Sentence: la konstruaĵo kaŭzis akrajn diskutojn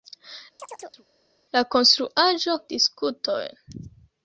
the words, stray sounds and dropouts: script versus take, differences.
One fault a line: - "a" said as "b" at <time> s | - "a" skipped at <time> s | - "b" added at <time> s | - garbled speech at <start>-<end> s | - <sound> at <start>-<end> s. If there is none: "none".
- chirp at 0.6-1.1 s
- "kaŭzis akrajn" skipped at 2.6 s